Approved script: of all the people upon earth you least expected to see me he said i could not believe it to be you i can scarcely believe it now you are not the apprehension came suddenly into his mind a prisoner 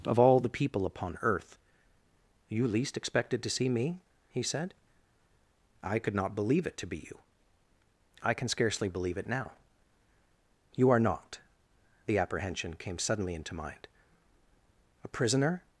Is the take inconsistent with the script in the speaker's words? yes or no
yes